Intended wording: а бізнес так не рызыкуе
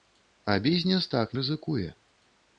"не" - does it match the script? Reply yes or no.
no